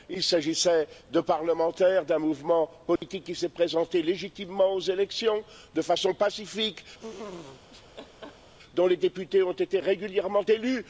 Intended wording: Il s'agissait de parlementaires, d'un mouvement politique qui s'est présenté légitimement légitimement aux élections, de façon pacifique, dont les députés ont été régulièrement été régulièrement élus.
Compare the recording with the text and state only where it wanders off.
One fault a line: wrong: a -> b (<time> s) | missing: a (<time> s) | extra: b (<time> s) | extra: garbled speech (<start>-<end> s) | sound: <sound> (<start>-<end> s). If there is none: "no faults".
sound: dropout (3.0-3.0 s)
missing: légitimement (4.7 s)
sound: laugh (7.0-8.5 s)
missing: été régulièrement (10.4 s)